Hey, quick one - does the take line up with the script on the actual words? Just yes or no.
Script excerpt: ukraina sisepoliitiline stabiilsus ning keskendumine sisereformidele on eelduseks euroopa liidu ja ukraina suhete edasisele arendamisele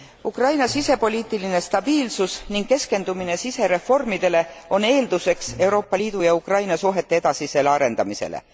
yes